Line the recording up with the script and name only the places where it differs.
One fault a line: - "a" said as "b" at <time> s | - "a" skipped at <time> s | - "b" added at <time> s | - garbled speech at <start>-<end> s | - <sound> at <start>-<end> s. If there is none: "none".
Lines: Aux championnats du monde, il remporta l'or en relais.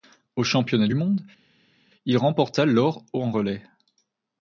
none